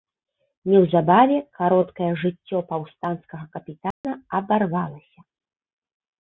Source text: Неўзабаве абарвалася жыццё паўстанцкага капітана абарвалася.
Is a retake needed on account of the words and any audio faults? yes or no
yes